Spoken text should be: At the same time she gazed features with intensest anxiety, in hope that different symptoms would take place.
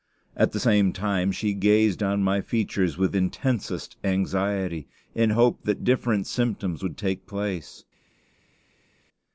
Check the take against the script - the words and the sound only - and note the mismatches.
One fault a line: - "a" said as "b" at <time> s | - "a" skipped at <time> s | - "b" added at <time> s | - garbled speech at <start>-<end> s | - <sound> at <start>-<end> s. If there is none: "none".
- "on my" added at 2.0 s